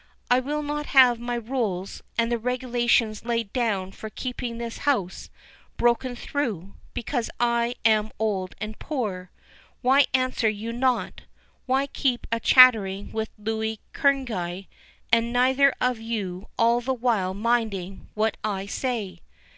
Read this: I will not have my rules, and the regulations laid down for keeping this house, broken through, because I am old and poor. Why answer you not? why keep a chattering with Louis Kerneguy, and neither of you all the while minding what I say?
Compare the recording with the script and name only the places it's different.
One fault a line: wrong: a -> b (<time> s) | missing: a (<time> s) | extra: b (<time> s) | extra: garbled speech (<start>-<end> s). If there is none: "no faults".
no faults